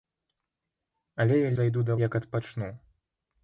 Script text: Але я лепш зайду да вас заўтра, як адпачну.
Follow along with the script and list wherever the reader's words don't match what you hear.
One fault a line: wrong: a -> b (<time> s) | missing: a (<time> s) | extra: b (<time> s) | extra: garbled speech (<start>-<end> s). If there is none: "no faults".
missing: лепш (1.5 s)
missing: вас заўтра (2.0 s)